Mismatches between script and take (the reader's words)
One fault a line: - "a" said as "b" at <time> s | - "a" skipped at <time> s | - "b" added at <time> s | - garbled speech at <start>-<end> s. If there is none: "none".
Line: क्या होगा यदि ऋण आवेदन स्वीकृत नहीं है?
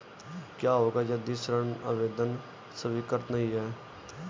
none